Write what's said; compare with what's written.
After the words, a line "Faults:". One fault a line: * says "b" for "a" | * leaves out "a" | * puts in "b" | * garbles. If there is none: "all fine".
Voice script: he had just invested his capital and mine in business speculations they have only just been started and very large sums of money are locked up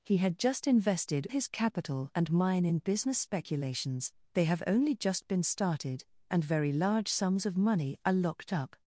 he had just invested his capital and mine in business speculations they have only just been started and very large sums of money are locked up
Faults:
all fine